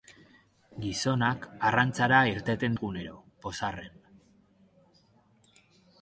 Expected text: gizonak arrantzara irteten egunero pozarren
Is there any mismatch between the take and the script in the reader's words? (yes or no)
no